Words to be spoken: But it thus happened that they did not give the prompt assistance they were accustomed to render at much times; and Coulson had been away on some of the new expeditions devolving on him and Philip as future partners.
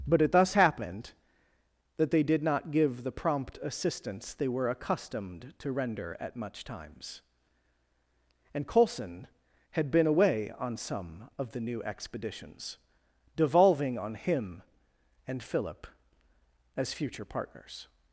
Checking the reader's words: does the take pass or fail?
pass